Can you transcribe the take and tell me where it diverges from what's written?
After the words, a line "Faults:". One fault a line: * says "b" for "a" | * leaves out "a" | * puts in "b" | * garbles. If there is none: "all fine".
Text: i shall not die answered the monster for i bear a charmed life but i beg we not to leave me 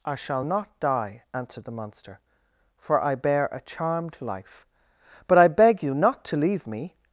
i shall not die answered the monster for i bear a charmed life but i beg you not to leave me
Faults:
* says "you" for "we"